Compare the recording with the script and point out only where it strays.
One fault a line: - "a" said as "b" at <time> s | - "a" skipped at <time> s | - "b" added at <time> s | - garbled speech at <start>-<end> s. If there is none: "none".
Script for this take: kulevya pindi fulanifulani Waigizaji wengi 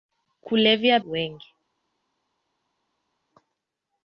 - "pindi fulanifulani Waigizaji" skipped at 1.0 s